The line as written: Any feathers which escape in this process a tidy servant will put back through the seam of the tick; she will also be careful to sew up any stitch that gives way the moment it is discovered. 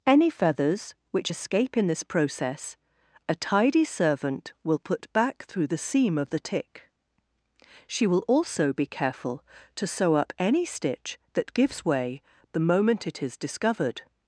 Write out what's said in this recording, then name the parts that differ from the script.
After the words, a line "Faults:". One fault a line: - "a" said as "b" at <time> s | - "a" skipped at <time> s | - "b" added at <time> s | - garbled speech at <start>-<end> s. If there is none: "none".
Any feathers which escape in this process a tidy servant will put back through the seam of the tick; she will also be careful to sew up any stitch that gives way the moment it is discovered.
Faults:
none